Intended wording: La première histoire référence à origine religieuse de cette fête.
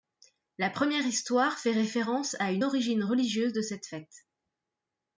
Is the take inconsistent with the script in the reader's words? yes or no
yes